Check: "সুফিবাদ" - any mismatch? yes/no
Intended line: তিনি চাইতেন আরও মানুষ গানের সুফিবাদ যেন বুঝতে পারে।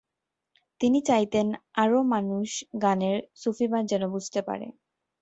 no